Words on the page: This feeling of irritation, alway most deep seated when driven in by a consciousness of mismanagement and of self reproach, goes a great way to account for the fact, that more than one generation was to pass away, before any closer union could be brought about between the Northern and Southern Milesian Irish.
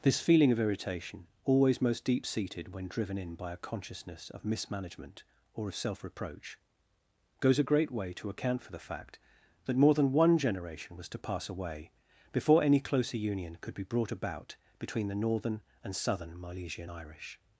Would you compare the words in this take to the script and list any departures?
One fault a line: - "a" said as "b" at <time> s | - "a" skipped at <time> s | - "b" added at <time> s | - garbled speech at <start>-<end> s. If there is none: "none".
- "alway" said as "always" at 1.4 s
- "and" said as "or" at 5.5 s